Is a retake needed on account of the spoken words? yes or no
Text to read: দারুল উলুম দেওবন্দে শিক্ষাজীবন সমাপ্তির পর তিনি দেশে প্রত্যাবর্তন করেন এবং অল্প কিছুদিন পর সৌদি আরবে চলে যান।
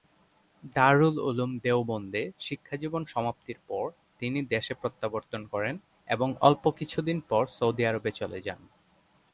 no